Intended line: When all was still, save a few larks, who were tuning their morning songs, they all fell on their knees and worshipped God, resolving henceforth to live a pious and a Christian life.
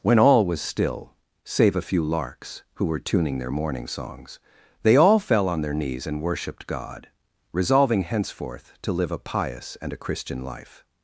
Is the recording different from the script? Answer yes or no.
no